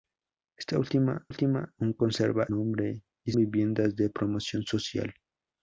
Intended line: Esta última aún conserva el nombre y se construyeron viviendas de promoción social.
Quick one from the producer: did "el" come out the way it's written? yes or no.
no